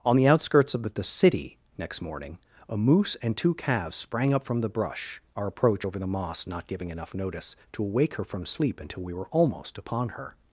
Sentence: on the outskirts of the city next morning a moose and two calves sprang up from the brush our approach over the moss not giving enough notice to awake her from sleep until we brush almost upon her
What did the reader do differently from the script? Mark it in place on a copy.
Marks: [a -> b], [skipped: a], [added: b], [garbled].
on the outskirts of the city next morning a moose and two calves sprang up from the brush our approach over the moss not giving enough notice to awake her from sleep until we [brush -> were] almost upon her